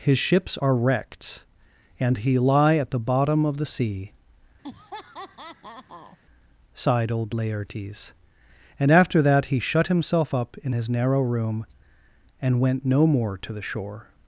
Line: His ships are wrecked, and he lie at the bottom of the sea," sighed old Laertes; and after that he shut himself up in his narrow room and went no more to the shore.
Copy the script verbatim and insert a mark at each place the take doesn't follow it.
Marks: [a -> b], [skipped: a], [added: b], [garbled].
His ships are wrecked, and he lie at the bottom of the sea," sighed old Laertes; and after that he shut himself up in his narrow room and went no more to the shore.